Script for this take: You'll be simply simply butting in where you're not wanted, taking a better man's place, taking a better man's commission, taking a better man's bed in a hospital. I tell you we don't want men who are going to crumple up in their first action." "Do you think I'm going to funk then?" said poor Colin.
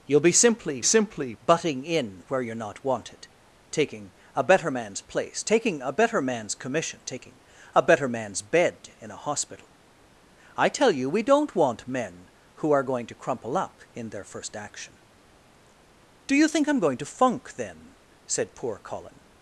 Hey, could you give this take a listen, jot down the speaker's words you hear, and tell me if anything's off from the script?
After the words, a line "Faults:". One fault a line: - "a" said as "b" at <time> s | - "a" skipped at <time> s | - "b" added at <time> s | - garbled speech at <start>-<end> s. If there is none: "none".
You'll be simply simply butting in where you're not wanted, taking a better man's place, taking a better man's commission, taking a better man's bed in a hospital. I tell you we don't want men who are going to crumple up in their first action." "Do you think I'm going to funk then?" said poor Colin.
Faults:
none